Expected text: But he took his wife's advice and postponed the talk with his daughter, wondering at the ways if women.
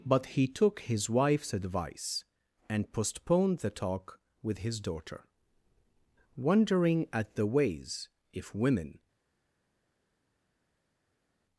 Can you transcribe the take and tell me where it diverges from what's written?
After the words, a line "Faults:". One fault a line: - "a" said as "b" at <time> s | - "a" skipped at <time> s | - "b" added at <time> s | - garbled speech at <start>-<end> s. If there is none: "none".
But he took his wife's advice and postponed the talk with his daughter, wondering at the ways if women.
Faults:
none